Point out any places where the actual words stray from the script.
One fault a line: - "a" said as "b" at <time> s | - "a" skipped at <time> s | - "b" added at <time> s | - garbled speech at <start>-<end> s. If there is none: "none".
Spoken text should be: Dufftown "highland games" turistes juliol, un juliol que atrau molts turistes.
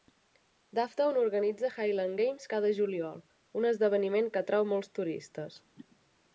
- "organitza" added at 1.2 s
- "turistes" said as "cada" at 2.6 s
- "juliol" said as "esdeveniment" at 3.7 s